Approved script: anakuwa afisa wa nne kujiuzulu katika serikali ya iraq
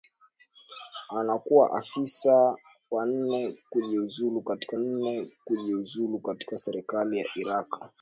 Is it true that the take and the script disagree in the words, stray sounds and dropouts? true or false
true